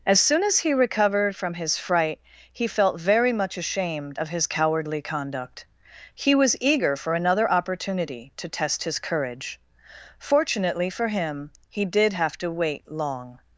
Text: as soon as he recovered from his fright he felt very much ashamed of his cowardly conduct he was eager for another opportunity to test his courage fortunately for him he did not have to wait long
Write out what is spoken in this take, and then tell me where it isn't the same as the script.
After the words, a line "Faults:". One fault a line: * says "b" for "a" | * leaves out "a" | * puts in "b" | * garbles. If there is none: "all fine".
as soon as he recovered from his fright he felt very much ashamed of his cowardly conduct he was eager for another opportunity to test his courage fortunately for him he did have to wait long
Faults:
* leaves out "not"